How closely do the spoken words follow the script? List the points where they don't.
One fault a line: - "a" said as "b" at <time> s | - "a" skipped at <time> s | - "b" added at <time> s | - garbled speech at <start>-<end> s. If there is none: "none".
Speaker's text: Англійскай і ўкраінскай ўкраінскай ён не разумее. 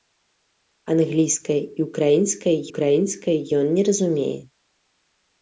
none